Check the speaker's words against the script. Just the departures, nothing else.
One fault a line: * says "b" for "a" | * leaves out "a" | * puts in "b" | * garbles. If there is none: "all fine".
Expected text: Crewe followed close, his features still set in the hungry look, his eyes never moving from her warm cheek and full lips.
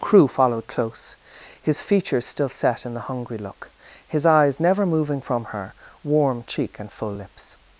all fine